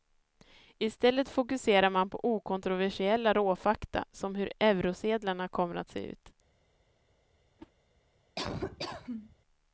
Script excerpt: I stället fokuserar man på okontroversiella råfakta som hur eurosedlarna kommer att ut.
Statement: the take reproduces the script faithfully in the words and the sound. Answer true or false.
false